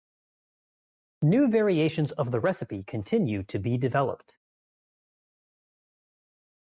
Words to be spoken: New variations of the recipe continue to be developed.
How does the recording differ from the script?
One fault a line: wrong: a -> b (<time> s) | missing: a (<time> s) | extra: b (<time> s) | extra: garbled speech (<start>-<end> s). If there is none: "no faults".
no faults